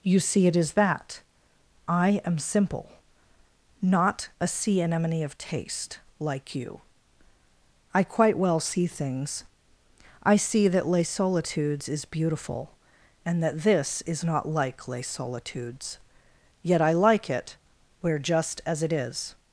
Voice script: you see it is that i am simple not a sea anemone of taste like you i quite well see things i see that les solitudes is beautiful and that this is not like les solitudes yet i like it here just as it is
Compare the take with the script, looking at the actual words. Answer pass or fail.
fail